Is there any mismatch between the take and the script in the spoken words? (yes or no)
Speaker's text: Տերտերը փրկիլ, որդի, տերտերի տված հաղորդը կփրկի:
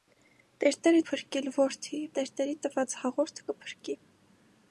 no